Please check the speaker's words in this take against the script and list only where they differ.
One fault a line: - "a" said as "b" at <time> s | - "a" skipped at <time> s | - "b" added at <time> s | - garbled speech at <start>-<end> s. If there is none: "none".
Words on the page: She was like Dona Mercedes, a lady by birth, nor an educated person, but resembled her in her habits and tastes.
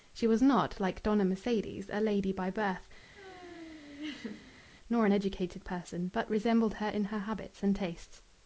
- "not" added at 0.4 s